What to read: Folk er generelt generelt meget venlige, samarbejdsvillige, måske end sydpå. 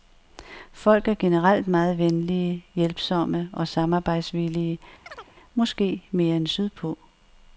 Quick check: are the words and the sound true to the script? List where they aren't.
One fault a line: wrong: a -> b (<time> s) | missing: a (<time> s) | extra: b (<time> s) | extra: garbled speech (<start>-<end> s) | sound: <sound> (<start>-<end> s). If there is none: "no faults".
missing: generelt (1.7 s)
extra: hjælpsomme og (2.8 s)
sound: chirp (5.1-5.3 s)
extra: mere (6.1 s)